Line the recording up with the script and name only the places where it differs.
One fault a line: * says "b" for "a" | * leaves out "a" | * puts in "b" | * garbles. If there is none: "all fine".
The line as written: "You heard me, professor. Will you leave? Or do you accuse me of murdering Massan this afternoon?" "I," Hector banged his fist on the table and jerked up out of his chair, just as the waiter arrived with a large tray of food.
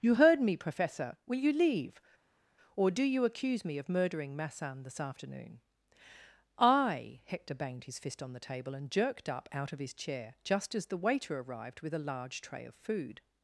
all fine